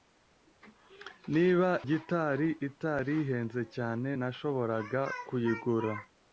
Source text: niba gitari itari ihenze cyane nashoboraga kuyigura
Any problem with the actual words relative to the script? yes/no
no